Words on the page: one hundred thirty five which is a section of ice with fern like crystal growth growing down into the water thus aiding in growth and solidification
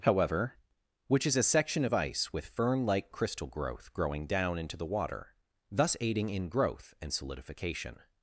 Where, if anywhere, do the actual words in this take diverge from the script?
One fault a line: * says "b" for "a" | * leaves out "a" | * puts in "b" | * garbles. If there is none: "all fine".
* says "however" for "one hundred thirty five"